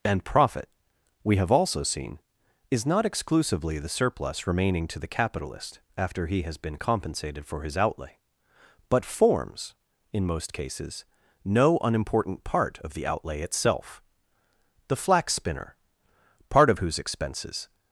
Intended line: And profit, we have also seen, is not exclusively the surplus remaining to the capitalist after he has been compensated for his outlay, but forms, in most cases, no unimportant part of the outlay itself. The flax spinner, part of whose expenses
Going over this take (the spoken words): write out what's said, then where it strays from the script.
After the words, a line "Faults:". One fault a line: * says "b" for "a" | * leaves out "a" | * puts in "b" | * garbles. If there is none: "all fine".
And profit, we have also seen, is not exclusively the surplus remaining to the capitalist after he has been compensated for his outlay, but forms, in most cases, no unimportant part of the outlay itself. The flax spinner, part of whose expenses
Faults:
all fine